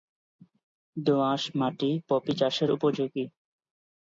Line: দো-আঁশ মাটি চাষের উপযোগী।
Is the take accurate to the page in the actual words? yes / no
no